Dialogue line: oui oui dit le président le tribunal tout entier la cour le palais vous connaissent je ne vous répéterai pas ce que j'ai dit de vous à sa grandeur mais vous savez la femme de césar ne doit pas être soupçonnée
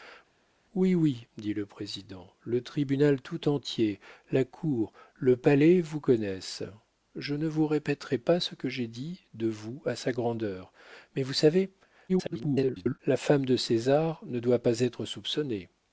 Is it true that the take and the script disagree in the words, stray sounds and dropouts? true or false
true